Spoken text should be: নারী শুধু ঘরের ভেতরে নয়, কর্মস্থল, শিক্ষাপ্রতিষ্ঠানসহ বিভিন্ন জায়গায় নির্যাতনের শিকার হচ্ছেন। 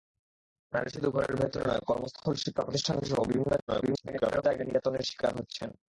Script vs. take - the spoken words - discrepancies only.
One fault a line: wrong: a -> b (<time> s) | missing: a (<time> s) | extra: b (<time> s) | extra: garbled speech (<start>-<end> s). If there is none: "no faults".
extra: garbled speech (3.7-4.4 s)